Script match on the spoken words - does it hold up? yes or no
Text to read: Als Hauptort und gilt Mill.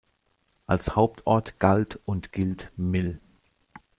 no